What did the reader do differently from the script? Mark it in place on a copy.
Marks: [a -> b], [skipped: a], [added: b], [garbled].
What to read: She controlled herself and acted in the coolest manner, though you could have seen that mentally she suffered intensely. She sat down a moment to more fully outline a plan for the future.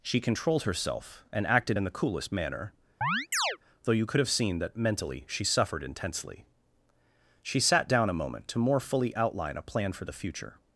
She controlled herself and acted in the coolest manner, though you could have seen that mentally she suffered intensely. She sat down a moment to more fully outline a plan for the future.